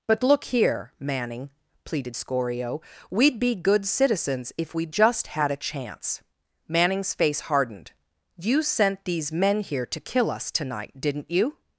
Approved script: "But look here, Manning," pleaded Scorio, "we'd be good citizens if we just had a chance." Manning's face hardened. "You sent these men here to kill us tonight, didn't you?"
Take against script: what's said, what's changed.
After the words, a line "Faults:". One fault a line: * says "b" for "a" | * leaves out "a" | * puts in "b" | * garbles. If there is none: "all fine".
"But look here, Manning," pleaded Scorio, "we'd be good citizens if we just had a chance." Manning's face hardened. "You sent these men here to kill us tonight, didn't you?"
Faults:
all fine